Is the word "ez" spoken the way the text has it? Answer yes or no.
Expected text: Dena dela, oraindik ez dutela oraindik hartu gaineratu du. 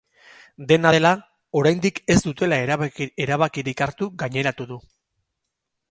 yes